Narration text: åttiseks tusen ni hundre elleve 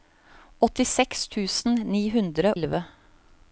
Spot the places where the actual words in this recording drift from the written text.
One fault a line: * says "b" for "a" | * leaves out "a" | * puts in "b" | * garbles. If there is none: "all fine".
all fine